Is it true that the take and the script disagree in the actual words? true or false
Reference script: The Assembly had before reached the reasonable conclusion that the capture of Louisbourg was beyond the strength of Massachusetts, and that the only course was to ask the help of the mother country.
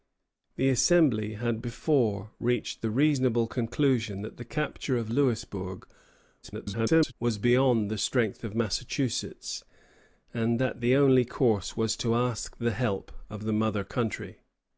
true